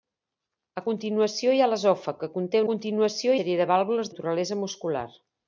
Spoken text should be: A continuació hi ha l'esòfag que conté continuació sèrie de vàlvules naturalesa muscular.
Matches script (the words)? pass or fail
pass